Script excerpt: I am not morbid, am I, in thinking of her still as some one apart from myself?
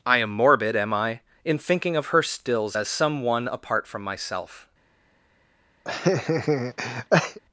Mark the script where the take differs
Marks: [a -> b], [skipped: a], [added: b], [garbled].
I am [skipped: not] morbid, am I, in thinking of her [still -> stills] as some one apart from myself?